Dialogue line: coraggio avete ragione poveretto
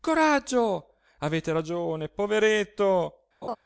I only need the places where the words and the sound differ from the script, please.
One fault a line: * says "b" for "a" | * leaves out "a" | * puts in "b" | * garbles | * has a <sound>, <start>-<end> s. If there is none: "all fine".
* has a laugh, 3.4-3.6 s